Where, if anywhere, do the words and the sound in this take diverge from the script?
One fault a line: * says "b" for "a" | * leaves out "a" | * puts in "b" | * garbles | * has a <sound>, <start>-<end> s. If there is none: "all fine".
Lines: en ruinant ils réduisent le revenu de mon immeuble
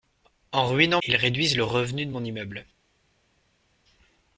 all fine